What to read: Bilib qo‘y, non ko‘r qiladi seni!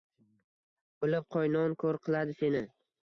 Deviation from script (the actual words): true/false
false